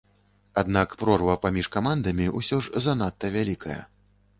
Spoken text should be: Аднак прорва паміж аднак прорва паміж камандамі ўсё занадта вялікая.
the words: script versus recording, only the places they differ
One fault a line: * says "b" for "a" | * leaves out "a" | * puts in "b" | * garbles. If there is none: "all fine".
* leaves out "аднак прорва паміж"
* puts in "ж"